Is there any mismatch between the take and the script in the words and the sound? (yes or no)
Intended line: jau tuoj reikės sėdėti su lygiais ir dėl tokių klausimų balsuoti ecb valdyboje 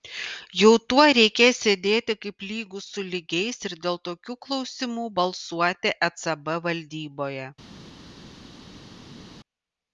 yes